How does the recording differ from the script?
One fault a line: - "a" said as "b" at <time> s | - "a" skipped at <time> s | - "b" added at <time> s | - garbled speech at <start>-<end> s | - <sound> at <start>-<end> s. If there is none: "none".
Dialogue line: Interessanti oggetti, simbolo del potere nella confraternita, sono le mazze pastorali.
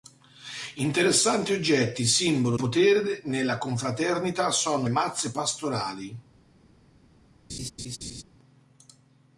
- "del" skipped at 2.6 s
- "le" skipped at 4.9 s
- laugh at 7.5-8.2 s